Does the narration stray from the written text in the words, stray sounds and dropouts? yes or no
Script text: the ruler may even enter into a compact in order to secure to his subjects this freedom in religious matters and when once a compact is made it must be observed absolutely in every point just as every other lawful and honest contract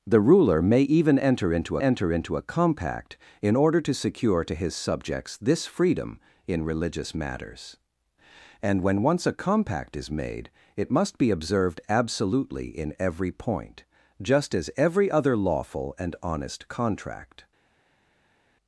yes